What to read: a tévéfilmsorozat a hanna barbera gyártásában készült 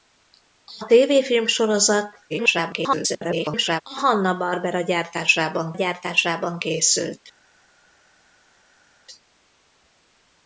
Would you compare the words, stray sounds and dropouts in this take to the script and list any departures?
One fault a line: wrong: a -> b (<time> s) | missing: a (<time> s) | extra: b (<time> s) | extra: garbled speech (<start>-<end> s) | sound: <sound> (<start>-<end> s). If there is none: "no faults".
extra: garbled speech (2.3-3.8 s)
extra: gyártásában (5.7 s)